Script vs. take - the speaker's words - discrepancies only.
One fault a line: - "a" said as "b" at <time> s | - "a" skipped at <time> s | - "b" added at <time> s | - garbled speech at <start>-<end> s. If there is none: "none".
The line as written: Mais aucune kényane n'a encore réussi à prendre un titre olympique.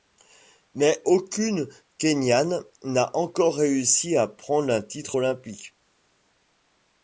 none